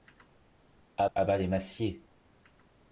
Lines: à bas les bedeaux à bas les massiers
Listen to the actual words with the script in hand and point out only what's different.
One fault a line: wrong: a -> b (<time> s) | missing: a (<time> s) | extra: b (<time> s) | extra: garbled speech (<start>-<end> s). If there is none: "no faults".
missing: bas les bedeaux (1.1 s)